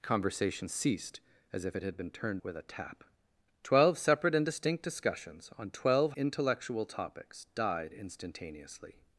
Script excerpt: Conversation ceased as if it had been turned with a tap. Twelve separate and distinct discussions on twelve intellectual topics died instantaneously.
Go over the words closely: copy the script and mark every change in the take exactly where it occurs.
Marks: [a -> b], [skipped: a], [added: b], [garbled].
Conversation ceased as if it had been turned with a tap. Twelve separate and distinct discussions on twelve intellectual topics died instantaneously.